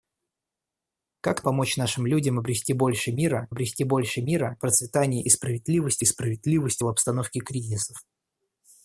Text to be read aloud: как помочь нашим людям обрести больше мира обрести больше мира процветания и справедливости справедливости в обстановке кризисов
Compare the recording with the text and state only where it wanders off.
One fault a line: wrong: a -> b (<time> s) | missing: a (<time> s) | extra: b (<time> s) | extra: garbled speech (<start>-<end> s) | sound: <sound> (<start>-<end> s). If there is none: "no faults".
no faults